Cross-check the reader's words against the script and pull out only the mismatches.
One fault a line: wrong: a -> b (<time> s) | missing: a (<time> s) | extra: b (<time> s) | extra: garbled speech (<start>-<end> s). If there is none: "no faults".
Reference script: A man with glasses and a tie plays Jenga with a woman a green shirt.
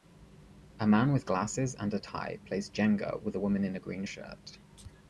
extra: in (3.7 s)